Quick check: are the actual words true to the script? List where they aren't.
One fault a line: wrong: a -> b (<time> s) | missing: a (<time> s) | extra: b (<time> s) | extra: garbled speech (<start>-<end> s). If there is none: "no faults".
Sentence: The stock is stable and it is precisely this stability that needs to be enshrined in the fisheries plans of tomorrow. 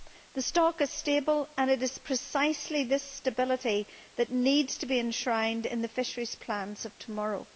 no faults